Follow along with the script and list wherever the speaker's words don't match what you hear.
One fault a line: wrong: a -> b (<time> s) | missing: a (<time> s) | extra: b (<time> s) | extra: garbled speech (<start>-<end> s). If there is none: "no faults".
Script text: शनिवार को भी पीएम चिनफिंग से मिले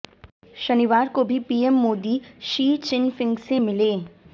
extra: मोदी शी (1.8 s)